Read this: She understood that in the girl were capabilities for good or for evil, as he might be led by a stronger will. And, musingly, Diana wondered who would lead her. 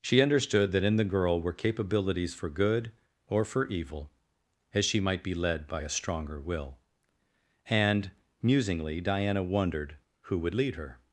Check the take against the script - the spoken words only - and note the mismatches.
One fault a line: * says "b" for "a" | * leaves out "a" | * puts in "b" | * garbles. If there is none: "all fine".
* says "she" for "he"